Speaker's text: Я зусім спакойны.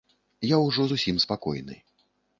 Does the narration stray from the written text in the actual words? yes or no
yes